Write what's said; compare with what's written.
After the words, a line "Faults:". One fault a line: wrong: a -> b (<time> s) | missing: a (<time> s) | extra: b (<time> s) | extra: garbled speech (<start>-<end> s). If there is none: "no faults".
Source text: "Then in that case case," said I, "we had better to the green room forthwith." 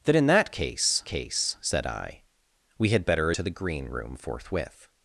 "Then in that case case," said I, "we had better to the green room forthwith."
Faults:
no faults